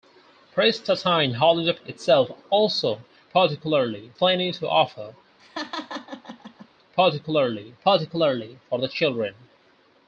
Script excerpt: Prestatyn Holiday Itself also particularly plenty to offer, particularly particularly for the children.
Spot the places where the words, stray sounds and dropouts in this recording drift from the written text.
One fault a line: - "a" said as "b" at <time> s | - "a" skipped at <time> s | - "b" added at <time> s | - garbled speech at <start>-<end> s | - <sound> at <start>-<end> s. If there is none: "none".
- laugh at 5.4-6.7 s